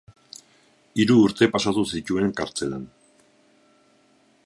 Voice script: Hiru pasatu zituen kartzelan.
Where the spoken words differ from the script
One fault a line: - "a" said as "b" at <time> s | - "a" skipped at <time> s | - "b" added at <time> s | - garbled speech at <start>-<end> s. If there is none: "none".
- "urte" added at 1.2 s